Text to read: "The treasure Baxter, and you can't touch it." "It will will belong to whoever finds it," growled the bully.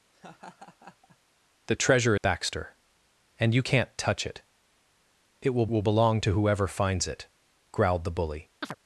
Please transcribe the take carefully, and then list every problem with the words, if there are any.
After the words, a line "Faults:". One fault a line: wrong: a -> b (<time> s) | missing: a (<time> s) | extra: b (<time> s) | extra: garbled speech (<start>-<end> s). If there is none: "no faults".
"The treasure Baxter, and you can't touch it." "It will will belong to whoever finds it," growled the bully.
Faults:
no faults